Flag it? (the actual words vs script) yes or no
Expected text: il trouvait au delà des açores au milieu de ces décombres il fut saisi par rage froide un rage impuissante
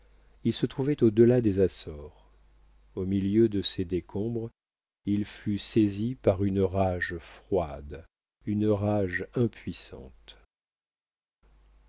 yes